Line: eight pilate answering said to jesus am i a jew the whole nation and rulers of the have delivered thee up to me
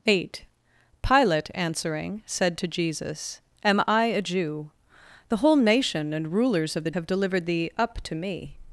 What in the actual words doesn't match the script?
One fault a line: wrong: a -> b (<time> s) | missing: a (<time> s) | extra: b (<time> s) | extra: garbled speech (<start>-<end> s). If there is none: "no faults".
no faults